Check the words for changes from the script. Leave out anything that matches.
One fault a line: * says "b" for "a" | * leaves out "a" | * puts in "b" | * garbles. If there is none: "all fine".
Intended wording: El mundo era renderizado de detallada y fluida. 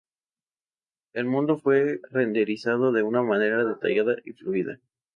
* says "fue" for "era"
* puts in "una manera"